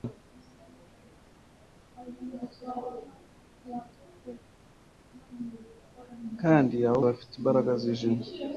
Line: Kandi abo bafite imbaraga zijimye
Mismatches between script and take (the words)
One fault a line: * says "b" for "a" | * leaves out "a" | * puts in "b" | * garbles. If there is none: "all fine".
all fine